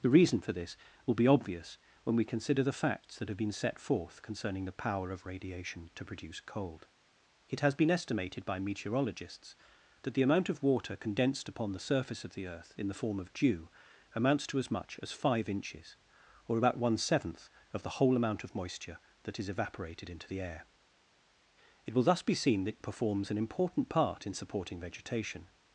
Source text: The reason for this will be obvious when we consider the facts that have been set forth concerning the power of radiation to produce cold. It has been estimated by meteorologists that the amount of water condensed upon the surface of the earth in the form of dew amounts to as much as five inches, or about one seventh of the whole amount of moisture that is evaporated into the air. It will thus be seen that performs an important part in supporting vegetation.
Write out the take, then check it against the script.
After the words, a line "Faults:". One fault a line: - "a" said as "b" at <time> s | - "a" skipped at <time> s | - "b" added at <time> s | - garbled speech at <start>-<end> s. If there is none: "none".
The reason for this will be obvious when we consider the facts that have been set forth concerning the power of radiation to produce cold. It has been estimated by meteorologists that the amount of water condensed upon the surface of the earth in the form of dew amounts to as much as five inches, or about one seventh of the whole amount of moisture that is evaporated into the air. It will thus be seen that performs an important part in supporting vegetation.
Faults:
none